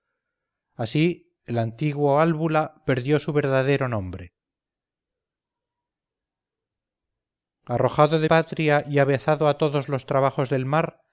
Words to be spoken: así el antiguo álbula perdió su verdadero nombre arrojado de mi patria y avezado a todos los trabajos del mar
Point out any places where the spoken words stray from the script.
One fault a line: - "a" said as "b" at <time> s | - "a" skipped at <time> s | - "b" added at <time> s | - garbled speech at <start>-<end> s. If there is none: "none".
- "mi" skipped at 8.3 s